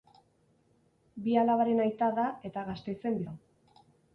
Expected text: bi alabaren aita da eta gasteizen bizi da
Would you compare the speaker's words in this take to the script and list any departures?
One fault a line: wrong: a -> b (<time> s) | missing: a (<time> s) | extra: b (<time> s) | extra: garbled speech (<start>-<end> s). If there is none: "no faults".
missing: bizi (3.2 s)